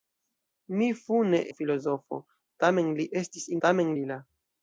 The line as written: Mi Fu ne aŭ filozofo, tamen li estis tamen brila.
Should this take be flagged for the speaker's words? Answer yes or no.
no